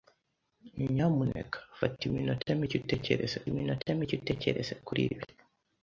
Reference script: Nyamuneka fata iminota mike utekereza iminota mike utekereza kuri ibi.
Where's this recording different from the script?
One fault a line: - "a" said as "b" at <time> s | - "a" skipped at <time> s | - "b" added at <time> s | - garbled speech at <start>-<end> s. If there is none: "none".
none